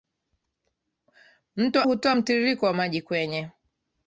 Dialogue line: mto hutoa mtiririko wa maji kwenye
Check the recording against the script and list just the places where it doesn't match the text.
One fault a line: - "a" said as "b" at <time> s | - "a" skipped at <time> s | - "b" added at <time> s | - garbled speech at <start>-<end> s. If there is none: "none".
none